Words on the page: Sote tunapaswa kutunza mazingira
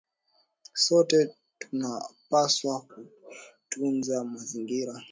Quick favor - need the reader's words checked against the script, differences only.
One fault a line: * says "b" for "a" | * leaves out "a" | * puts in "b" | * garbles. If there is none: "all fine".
all fine